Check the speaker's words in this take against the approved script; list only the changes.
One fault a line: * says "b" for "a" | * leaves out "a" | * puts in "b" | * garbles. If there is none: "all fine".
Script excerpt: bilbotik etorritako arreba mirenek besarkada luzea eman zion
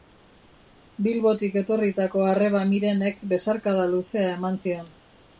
all fine